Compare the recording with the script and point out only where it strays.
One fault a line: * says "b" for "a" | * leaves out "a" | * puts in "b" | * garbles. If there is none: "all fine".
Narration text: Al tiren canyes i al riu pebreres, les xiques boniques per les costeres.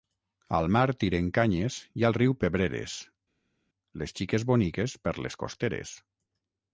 * puts in "mar"